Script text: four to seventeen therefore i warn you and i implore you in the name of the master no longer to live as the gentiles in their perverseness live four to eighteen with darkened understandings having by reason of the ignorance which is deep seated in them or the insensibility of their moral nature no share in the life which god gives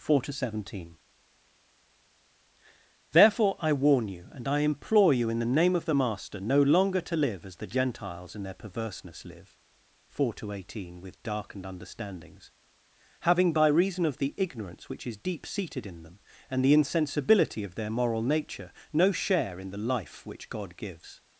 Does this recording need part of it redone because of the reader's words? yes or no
yes